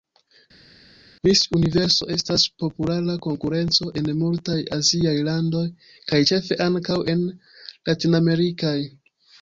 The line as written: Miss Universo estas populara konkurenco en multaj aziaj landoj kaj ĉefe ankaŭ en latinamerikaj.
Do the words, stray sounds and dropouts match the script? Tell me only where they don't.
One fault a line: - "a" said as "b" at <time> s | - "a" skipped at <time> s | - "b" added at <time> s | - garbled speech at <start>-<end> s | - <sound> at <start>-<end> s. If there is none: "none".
none